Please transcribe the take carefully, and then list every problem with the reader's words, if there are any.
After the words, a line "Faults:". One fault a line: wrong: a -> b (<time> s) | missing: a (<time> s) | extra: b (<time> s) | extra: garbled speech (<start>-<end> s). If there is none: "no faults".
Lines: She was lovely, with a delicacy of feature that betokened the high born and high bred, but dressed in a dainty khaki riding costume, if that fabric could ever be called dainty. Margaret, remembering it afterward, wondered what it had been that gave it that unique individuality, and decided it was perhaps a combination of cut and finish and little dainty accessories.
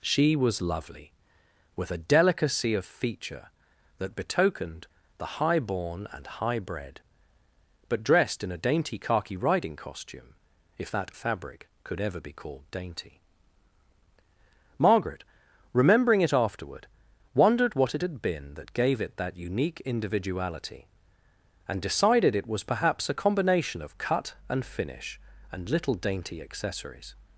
She was lovely, with a delicacy of feature that betokened the high born and high bred, but dressed in a dainty khaki riding costume, if that fabric could ever be called dainty. Margaret, remembering it afterward, wondered what it had been that gave it that unique individuality, and decided it was perhaps a combination of cut and finish and little dainty accessories.
Faults:
no faults